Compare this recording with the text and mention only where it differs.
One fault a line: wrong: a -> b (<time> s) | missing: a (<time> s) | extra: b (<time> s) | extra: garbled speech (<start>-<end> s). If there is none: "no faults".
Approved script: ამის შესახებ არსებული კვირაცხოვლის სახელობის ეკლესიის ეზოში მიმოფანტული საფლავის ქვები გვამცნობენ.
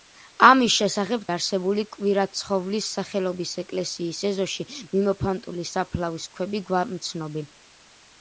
no faults